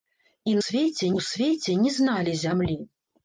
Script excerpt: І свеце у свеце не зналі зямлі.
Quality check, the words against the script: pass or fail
pass